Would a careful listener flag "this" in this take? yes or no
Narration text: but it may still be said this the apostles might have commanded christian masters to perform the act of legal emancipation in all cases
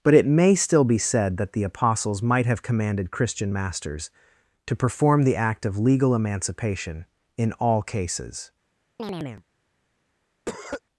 yes